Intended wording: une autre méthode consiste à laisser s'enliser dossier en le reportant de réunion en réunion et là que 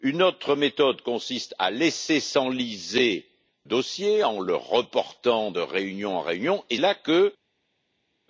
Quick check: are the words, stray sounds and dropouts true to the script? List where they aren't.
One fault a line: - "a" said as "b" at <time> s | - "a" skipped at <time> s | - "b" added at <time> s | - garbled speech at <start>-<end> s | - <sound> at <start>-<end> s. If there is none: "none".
none